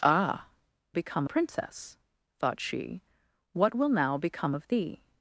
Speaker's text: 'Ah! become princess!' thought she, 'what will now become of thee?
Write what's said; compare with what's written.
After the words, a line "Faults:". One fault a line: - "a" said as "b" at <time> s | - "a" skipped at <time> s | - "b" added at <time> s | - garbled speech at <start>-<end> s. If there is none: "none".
'Ah! become princess!' thought she, 'what will now become of thee?
Faults:
none